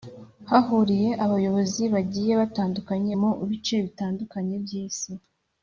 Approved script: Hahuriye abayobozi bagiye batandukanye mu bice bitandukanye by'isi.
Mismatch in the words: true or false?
false